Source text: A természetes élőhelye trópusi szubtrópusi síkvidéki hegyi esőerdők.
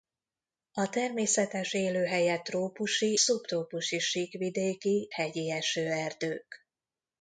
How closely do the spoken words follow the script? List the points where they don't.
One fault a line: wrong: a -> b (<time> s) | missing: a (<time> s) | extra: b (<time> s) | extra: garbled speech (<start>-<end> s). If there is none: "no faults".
no faults